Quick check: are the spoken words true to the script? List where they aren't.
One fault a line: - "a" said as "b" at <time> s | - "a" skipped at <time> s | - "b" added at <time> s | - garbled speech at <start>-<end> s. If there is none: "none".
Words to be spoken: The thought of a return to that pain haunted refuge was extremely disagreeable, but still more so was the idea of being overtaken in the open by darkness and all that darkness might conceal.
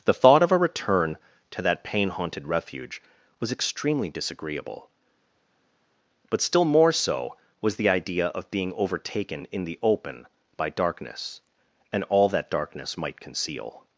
none